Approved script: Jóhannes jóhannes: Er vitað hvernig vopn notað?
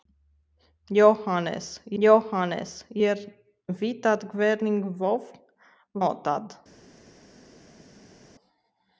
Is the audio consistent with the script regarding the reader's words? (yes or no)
yes